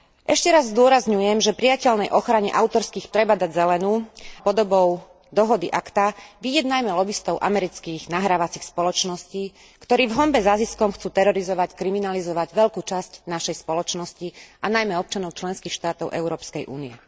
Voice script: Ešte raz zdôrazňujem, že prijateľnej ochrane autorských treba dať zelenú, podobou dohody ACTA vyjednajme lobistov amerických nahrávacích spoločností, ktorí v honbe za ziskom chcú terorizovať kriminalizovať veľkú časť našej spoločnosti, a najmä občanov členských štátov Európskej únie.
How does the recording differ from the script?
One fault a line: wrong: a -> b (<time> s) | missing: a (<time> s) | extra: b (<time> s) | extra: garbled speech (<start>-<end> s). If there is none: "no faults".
no faults